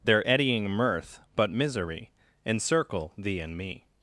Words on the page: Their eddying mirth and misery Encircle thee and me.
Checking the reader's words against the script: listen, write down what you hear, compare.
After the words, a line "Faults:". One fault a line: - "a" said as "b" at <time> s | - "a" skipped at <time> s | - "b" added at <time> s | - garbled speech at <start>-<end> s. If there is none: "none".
Their eddying mirth but misery Encircle thee and me.
Faults:
- "and" said as "but" at 1.3 s